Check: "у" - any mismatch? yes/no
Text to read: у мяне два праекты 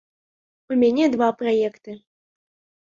no